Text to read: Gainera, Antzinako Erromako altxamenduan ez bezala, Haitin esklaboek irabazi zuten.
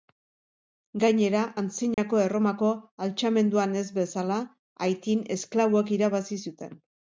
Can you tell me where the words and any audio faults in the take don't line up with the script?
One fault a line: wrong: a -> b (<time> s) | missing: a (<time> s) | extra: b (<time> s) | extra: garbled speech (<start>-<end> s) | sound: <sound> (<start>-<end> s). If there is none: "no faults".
sound: dropout (1.9-2.0 s)